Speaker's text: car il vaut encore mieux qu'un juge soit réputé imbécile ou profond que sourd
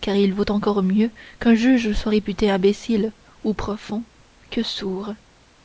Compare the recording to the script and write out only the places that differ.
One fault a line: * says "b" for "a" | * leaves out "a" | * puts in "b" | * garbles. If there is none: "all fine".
all fine